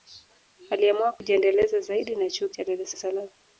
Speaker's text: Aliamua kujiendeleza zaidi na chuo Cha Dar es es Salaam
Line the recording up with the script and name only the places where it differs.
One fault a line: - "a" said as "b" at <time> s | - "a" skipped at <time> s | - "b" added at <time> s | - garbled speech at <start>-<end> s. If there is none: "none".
none